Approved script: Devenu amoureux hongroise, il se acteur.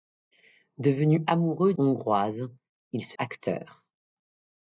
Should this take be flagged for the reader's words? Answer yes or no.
no